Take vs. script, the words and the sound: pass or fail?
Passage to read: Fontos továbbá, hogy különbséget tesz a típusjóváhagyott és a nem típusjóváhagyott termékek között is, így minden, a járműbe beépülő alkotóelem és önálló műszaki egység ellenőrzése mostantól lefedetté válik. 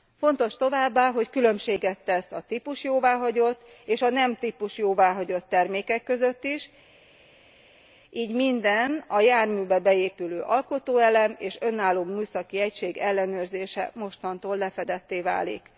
pass